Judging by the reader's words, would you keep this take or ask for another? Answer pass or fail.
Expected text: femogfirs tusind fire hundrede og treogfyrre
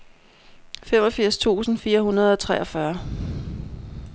pass